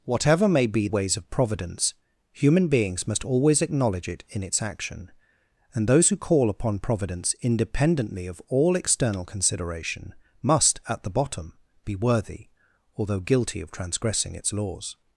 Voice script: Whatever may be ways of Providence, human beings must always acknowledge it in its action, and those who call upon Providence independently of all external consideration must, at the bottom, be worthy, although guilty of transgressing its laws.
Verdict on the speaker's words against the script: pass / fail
pass